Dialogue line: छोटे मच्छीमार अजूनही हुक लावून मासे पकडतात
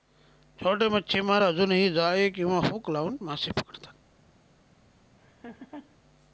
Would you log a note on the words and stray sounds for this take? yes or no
yes